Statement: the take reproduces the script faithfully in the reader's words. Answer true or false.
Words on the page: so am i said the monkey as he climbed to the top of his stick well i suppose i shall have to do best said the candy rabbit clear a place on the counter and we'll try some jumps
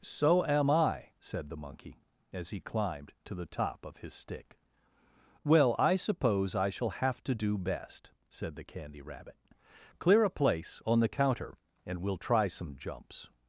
true